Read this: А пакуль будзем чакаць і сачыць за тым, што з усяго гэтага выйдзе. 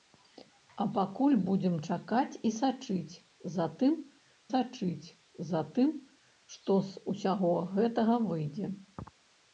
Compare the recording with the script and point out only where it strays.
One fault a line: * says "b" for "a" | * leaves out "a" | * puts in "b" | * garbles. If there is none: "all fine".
* puts in "сачыць за тым"